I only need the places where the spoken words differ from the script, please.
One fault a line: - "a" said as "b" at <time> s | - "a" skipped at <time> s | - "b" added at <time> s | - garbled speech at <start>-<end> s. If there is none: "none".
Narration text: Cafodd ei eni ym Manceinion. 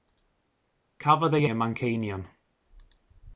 - "eni" skipped at 1.4 s